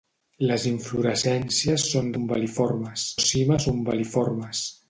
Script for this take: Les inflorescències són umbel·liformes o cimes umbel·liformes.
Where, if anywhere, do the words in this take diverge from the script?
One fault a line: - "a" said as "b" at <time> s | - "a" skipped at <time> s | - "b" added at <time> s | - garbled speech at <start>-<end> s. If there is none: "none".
none